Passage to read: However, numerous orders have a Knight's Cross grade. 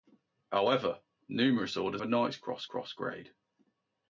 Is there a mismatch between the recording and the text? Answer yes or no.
yes